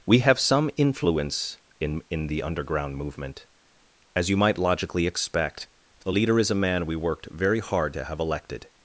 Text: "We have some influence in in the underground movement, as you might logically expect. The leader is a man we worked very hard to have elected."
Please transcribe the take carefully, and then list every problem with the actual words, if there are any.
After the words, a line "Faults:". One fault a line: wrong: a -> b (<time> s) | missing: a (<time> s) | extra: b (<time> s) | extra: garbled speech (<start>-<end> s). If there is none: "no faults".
"We have some influence in in the underground movement, as you might logically expect. The leader is a man we worked very hard to have elected."
Faults:
no faults